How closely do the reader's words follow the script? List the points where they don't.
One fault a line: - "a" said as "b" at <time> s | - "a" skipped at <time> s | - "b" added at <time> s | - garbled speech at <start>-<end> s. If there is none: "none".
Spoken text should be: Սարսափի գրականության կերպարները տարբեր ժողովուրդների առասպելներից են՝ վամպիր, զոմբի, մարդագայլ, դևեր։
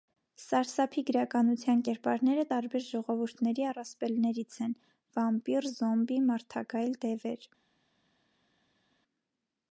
none